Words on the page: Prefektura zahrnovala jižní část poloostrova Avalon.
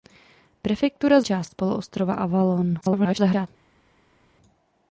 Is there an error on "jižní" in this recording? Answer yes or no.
yes